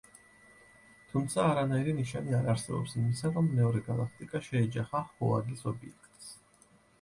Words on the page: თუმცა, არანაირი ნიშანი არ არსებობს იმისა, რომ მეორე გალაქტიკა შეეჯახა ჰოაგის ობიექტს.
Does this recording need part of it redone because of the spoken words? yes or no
no